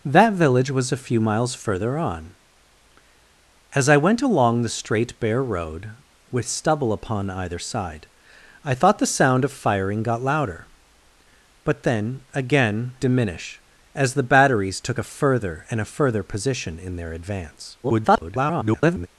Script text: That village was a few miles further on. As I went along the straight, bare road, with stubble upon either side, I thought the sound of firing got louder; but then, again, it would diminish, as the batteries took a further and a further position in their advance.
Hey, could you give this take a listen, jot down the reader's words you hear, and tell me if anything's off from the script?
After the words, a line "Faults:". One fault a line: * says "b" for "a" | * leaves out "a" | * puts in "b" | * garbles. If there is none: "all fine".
That village was a few miles further on. As I went along the straight, bare road, with stubble upon either side, I thought the sound of firing got louder; but then, again, diminish, as the batteries took a further and a further position in their advance. [garbled]
Faults:
* leaves out "it would"
* garbles